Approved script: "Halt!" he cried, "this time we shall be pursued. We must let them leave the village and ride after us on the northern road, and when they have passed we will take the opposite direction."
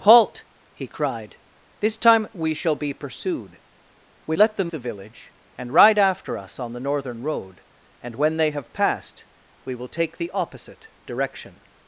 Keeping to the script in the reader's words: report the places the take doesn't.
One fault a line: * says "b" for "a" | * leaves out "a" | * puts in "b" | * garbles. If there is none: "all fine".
* leaves out "must"
* leaves out "leave"